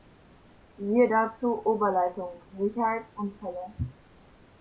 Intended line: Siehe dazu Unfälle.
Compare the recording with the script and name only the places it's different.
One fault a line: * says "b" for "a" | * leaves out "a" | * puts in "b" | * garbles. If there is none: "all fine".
* puts in "Oberleitung Sicherheit"